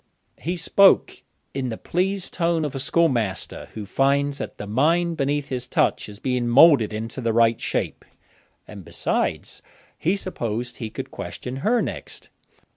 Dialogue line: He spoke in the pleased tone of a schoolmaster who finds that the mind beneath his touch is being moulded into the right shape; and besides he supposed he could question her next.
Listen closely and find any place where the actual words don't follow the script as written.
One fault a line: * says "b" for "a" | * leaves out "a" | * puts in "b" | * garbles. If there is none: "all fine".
all fine